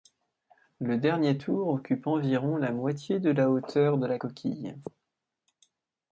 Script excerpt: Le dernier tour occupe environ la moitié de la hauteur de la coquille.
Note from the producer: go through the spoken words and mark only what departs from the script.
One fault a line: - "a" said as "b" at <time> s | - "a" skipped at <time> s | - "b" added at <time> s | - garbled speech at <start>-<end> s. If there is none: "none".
none